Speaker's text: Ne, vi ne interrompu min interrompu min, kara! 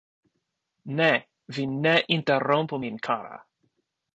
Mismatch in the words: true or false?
true